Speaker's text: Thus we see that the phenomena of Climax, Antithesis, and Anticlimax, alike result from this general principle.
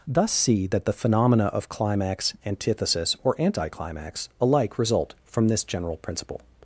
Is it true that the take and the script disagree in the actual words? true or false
true